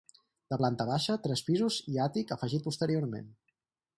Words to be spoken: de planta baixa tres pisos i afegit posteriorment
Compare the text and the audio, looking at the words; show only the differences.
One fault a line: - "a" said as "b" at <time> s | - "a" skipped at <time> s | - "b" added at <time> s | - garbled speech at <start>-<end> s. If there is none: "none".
- "àtic" added at 2.0 s